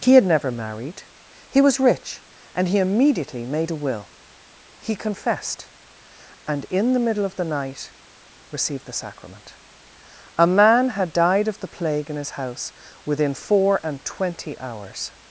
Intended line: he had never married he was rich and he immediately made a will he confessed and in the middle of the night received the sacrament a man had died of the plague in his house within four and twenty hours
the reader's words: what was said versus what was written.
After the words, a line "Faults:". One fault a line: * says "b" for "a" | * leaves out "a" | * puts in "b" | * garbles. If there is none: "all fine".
he had never married he was rich and he immediately made a will he confessed and in the middle of the night received the sacrament a man had died of the plague in his house within four and twenty hours
Faults:
all fine